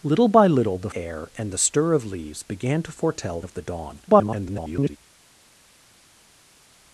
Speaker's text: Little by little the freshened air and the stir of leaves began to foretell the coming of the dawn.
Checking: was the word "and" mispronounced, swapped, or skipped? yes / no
no